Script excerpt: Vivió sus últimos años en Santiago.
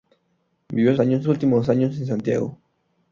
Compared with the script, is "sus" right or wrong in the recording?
wrong